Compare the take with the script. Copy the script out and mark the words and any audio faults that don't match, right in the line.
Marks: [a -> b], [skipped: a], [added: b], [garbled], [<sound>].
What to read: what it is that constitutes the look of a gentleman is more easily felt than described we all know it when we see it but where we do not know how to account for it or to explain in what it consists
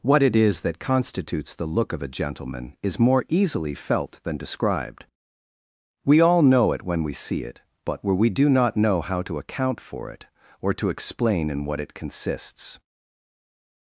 what it is that constitutes the look of a gentleman is more easily felt than described we all know it when we see it but where we do not know how to account for it or to explain in what it consists